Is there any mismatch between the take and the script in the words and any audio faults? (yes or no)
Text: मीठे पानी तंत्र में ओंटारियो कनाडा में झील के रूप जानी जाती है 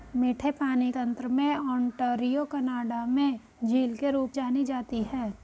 no